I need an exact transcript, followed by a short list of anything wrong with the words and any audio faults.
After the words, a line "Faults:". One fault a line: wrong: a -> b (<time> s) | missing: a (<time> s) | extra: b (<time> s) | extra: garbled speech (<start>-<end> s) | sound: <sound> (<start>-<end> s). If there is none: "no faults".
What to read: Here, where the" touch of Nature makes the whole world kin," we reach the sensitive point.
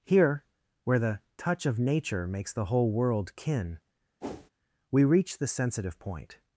Here, where the" touch of Nature makes the whole world kin," we reach the sensitive point.
Faults:
sound: whoosh (4.2-4.5 s)